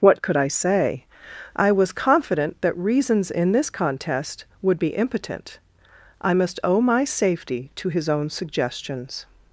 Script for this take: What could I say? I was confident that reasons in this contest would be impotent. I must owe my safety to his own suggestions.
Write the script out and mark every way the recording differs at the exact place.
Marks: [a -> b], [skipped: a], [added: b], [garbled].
What could I say? I was confident that reasons in this contest would be impotent. I must owe my safety to his own suggestions.